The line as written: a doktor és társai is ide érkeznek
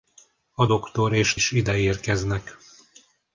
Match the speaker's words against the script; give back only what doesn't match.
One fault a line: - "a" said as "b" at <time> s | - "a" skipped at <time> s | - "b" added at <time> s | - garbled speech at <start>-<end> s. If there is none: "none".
- "társai" skipped at 1.3 s